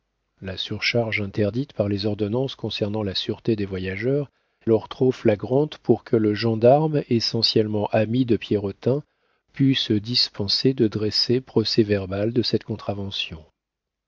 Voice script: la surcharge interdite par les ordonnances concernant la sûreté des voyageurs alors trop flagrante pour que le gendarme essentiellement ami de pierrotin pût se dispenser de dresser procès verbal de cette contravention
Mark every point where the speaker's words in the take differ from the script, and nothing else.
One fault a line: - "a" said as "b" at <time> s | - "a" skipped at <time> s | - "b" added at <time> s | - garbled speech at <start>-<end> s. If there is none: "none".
none